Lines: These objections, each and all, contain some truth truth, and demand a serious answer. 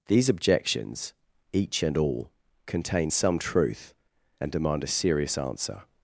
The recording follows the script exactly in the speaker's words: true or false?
false